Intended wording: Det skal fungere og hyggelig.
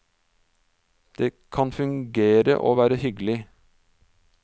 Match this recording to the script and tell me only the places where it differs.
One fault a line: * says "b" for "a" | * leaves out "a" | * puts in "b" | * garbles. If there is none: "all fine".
* says "kan" for "skal"
* puts in "være"